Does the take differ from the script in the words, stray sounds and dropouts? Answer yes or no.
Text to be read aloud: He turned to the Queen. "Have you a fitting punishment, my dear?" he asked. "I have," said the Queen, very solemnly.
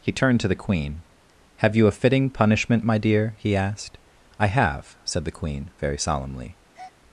yes